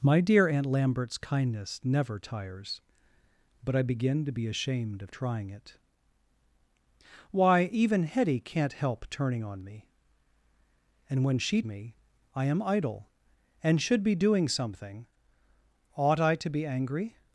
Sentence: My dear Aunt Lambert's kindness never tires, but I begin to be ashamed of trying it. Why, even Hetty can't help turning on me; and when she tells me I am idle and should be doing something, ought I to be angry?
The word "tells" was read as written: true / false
false